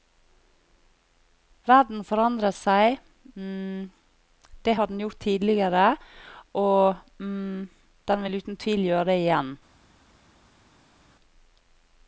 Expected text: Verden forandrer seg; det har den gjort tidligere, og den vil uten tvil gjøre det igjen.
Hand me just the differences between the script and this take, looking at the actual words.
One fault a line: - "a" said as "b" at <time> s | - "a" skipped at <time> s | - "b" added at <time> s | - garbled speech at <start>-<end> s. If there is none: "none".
none